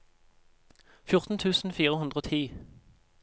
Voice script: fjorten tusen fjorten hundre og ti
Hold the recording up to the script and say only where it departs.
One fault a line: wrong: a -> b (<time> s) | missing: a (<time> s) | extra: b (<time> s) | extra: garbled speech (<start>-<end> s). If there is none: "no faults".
wrong: fjorten -> fire (1.7 s)